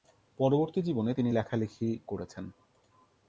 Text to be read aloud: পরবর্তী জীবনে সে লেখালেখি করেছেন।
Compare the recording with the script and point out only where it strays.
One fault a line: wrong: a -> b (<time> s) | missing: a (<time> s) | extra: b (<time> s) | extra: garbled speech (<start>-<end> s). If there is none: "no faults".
wrong: সে -> তিনি (1.1 s)